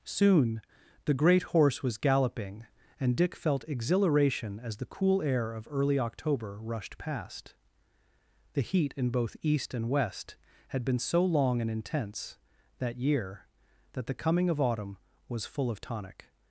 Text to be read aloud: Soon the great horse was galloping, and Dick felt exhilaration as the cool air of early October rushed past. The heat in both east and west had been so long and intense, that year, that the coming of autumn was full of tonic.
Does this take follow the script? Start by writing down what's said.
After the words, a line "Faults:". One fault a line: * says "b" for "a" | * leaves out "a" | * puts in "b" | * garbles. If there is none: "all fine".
Soon the great horse was galloping, and Dick felt exhilaration as the cool air of early October rushed past. The heat in both east and west had been so long and intense, that year, that the coming of autumn was full of tonic.
Faults:
all fine